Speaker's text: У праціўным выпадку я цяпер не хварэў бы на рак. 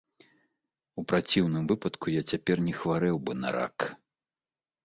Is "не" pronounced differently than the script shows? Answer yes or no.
no